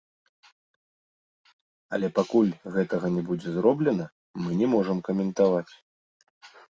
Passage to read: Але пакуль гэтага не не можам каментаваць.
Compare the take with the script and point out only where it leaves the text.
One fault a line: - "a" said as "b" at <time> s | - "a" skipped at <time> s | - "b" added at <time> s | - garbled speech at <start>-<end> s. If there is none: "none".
- "будзе зроблена мы" added at 3.3 s